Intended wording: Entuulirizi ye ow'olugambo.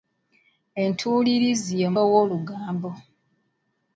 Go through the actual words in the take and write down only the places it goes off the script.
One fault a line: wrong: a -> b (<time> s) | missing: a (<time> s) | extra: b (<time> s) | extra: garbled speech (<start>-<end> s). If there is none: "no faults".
no faults